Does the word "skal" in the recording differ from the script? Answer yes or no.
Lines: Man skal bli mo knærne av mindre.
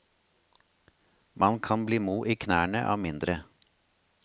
yes